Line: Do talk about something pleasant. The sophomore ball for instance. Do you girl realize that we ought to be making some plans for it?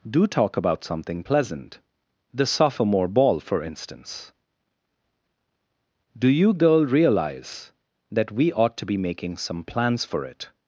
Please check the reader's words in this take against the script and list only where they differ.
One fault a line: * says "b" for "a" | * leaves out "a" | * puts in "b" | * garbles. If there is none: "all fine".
all fine